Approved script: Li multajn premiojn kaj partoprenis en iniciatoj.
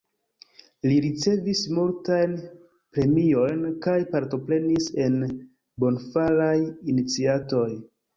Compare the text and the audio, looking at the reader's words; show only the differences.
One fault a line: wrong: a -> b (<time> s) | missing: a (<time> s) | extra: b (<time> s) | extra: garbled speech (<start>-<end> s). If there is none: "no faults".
extra: ricevis (1.1 s)
extra: bonfaraj (5.9 s)